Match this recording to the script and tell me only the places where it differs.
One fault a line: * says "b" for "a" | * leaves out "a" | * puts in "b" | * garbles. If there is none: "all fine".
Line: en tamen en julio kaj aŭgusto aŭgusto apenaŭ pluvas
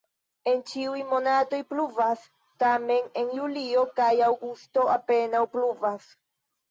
* puts in "ĉiuj monatoj pluvas"
* leaves out "aŭgusto"